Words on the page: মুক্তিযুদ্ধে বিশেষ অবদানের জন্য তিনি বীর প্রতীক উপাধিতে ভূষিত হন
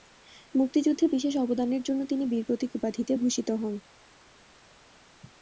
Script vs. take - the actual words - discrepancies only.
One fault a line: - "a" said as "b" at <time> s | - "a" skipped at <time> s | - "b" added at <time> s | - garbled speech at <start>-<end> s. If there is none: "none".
none